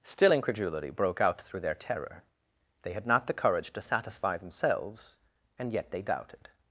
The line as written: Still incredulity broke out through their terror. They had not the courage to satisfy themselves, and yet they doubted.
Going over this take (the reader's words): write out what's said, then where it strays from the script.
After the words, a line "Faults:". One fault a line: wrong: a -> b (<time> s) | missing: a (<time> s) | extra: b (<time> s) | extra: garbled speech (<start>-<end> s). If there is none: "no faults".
Still incredulity broke out through their terror. They had not the courage to satisfy themselves, and yet they doubted.
Faults:
no faults